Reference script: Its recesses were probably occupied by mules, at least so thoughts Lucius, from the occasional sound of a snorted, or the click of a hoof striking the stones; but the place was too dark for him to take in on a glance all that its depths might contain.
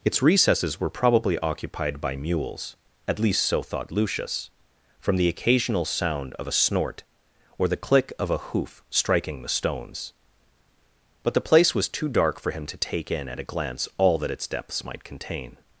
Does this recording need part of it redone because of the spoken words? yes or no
yes